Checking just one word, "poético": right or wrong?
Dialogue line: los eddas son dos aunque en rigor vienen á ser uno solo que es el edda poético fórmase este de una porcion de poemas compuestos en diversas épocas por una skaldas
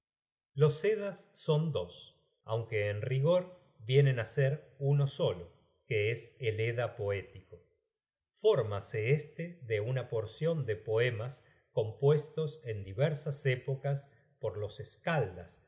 right